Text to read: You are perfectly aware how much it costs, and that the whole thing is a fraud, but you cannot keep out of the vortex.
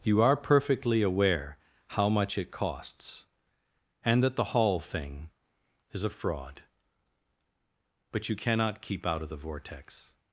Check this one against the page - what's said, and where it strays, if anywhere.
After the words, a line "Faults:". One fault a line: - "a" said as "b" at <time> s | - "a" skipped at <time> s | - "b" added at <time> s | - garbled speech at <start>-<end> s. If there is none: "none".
You are perfectly aware how much it costs, and that the hall thing is a fraud, but you cannot keep out of the vortex.
Faults:
- "whole" said as "hall" at 4.5 s